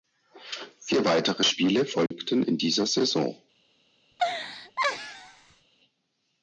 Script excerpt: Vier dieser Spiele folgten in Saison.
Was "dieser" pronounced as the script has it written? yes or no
no